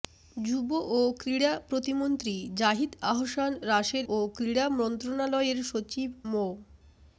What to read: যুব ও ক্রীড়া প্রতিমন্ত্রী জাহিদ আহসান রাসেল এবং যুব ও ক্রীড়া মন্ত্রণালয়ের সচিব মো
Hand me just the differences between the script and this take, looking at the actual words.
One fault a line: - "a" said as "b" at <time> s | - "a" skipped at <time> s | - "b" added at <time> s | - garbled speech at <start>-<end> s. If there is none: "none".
- "এবং যুব" skipped at 4.0 s